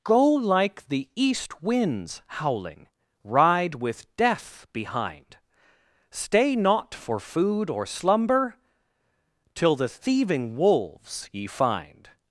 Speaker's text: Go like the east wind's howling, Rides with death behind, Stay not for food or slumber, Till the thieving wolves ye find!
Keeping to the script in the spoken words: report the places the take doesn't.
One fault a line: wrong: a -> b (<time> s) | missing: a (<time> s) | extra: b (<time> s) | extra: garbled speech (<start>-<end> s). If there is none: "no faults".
wrong: Rides -> Ride (3.2 s)